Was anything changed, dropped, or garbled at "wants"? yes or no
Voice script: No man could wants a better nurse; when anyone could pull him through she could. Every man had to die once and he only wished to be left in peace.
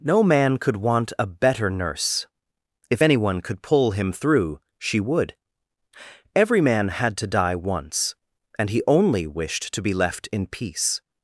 yes